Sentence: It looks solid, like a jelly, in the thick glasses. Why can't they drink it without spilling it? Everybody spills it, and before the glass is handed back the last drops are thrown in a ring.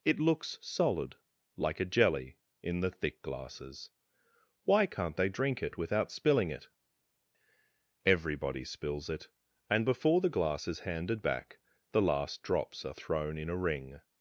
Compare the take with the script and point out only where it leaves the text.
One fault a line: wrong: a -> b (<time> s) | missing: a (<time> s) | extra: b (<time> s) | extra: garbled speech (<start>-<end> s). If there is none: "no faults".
no faults